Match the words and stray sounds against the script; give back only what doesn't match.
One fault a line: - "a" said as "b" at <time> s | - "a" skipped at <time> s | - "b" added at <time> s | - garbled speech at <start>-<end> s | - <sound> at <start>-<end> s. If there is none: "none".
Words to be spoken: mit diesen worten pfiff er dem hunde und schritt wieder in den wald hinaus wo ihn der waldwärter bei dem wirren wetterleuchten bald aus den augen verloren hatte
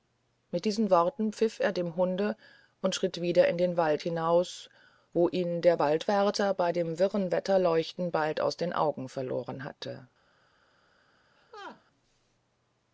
- laugh at 11.4-11.8 s